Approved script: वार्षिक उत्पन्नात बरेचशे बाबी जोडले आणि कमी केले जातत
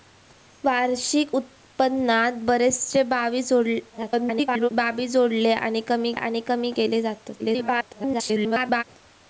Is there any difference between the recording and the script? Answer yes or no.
yes